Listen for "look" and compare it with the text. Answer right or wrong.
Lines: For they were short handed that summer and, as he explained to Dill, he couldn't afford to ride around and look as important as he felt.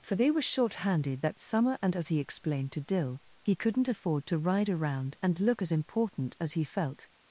right